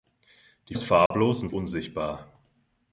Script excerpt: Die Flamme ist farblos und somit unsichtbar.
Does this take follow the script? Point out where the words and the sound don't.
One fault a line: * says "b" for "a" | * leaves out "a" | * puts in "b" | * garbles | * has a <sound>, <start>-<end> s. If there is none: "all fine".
* leaves out "Flamme"
* has a dropout, 1.1-1.1 s
* leaves out "somit"